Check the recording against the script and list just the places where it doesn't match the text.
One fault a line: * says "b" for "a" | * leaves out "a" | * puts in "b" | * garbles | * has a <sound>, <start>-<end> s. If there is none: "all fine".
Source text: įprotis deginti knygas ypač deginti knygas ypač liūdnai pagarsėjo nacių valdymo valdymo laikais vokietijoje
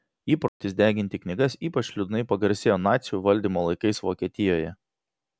* has a dropout, 0.5-0.6 s
* leaves out "deginti knygas ypač"
* leaves out "valdymo"